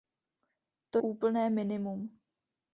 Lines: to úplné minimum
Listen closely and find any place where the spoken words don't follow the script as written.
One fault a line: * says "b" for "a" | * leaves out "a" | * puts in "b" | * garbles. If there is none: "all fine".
all fine